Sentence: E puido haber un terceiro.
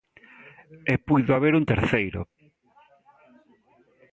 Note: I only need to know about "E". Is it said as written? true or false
true